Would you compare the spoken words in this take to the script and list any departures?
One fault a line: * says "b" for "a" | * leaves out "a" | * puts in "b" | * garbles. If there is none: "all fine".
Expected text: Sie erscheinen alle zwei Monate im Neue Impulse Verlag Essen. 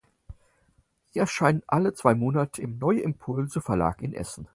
* puts in "in"